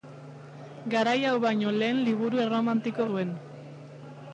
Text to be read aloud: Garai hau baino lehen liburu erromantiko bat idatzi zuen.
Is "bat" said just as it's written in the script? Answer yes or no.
no